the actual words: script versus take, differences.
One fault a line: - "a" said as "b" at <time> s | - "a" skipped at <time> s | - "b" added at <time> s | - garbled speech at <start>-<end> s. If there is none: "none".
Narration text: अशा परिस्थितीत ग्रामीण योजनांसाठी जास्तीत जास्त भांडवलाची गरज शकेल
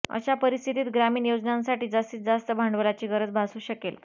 - "भासू" added at 3.3 s